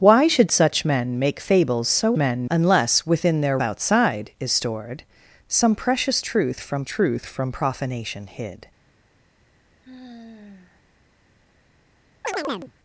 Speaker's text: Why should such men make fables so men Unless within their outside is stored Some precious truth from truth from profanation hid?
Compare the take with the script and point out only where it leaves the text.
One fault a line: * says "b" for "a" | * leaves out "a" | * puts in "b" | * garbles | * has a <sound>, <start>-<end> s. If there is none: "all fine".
* has a sigh, 9.8-10.8 s
* has a chirp, 12.2-12.7 s